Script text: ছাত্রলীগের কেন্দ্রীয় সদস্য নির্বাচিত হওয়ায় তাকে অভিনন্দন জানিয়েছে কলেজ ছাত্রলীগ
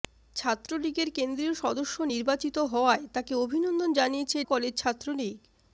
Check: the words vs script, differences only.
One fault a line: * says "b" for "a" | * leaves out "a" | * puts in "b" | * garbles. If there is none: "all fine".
all fine